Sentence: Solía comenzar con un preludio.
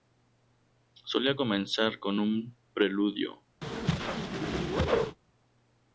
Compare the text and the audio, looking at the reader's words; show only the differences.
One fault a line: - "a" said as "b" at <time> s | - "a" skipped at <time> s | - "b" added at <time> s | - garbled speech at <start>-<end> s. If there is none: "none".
none